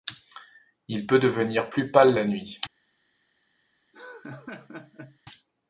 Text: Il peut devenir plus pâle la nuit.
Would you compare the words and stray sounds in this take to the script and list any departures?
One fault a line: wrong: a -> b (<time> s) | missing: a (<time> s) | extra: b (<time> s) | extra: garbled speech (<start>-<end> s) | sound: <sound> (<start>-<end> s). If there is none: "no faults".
sound: laugh (3.9-5.2 s)